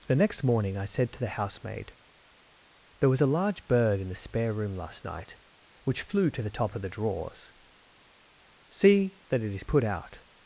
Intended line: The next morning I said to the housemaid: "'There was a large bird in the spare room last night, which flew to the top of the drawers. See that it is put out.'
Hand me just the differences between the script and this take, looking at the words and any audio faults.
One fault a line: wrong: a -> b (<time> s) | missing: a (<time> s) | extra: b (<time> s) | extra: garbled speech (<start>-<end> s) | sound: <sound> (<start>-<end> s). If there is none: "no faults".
no faults